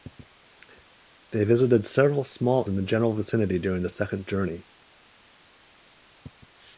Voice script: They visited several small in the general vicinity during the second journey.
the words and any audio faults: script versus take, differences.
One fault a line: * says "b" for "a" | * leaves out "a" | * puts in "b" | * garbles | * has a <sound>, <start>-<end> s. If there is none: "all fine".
all fine